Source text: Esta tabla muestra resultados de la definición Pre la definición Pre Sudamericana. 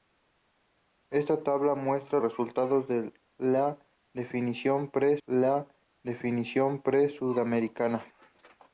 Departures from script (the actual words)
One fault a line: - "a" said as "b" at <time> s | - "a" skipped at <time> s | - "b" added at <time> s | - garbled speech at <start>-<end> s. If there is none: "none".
none